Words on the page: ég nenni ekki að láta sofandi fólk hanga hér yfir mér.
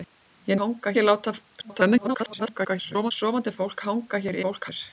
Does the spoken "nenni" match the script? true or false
false